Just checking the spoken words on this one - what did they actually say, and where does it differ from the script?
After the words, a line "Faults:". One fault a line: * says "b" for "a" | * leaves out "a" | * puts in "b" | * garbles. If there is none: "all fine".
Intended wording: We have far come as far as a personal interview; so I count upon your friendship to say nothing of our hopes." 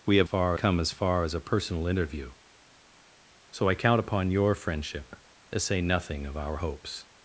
We have far come as far as a personal interview; so I count upon your friendship to say nothing of our hopes."
Faults:
all fine